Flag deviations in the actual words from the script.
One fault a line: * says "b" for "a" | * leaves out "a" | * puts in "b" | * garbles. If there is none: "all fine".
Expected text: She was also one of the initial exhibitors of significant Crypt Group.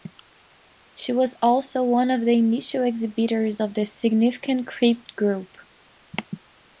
* puts in "the"